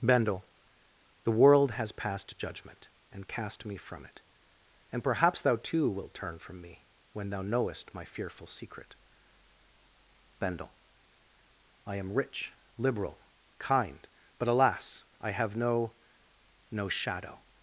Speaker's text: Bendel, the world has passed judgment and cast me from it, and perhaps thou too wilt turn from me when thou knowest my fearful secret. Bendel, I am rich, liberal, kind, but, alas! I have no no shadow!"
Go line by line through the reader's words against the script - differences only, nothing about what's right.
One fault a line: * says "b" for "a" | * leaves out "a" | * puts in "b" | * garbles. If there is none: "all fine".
all fine